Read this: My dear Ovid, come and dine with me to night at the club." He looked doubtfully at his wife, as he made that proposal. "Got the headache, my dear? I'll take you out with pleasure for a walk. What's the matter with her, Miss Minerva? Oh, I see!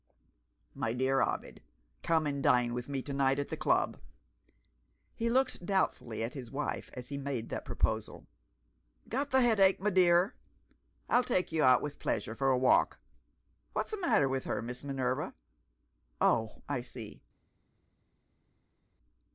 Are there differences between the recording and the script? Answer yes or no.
no